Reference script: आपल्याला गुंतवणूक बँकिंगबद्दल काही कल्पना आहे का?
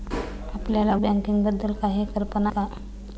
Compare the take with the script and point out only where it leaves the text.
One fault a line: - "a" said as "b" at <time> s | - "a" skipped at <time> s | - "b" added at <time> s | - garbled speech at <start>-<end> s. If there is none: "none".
- "गुंतवणूक" skipped at 0.9 s
- "आहे" skipped at 2.5 s